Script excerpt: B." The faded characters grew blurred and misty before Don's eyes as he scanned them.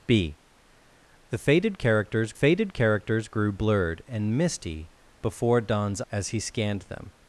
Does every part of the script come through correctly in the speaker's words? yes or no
no